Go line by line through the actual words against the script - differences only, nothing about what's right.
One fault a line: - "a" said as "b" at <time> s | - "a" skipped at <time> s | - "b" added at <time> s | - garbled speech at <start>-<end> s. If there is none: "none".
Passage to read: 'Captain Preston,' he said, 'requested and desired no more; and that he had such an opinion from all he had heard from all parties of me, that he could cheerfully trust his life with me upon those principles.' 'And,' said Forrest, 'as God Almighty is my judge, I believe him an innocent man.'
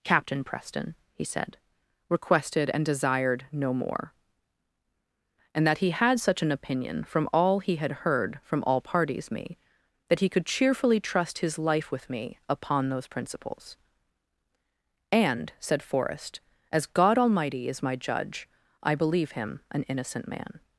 - "of" skipped at 9.3 s